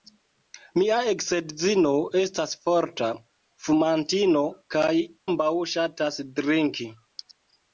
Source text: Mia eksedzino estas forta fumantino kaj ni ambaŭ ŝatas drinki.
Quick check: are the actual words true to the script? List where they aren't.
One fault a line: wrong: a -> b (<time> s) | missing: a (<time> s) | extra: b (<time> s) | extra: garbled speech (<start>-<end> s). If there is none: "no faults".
missing: ni (4.9 s)